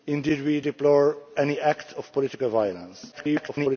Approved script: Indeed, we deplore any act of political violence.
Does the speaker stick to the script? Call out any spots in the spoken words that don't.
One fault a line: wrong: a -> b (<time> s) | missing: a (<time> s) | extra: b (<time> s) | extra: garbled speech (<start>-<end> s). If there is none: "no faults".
extra: garbled speech (3.1-3.8 s)